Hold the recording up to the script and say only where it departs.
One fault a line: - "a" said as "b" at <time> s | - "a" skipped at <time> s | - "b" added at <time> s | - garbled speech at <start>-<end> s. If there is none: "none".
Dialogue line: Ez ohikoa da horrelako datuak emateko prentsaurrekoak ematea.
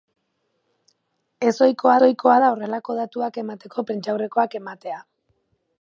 - "ohikoa" added at 2.1 s